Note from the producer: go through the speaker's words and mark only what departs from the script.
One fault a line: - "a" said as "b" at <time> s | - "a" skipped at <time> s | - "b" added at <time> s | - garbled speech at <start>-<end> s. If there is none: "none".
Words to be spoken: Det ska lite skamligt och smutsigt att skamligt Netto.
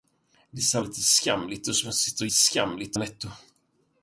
none